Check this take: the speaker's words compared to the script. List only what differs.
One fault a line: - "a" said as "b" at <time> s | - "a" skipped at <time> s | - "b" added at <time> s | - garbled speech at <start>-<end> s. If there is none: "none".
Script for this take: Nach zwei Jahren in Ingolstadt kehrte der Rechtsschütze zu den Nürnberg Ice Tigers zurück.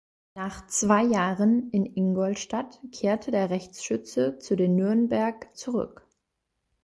- "Ice Tigers" skipped at 5.5 s